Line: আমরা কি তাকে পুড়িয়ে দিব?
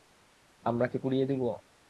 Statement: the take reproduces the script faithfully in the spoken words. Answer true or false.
false